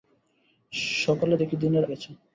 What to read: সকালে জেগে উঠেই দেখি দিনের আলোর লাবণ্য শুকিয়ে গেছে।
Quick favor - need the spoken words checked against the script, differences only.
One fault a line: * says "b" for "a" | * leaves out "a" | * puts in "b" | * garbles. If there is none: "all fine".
* leaves out "জেগে উঠেই"
* leaves out "আলোর লাবণ্য শুকিয়ে"